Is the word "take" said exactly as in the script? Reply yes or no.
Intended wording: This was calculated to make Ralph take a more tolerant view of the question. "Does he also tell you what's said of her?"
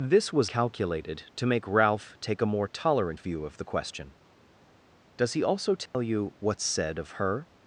yes